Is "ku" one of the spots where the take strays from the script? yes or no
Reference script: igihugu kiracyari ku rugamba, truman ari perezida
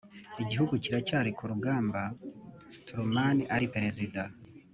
no